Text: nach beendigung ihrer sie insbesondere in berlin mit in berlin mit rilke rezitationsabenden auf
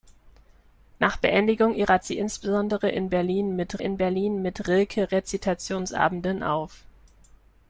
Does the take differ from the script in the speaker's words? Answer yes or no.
no